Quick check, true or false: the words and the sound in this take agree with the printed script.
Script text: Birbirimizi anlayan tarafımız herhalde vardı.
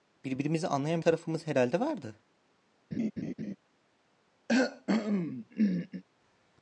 false